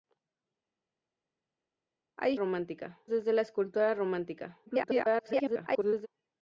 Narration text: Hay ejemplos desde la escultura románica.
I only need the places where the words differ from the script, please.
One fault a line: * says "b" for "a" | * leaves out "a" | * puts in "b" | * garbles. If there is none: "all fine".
* says "románica" for "ejemplos"
* garbles